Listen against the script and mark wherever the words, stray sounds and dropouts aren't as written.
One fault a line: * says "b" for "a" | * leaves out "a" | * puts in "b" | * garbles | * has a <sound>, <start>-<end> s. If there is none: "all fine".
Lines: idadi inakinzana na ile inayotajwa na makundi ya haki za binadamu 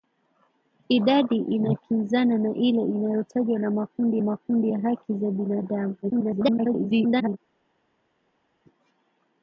* puts in "makundi"
* garbles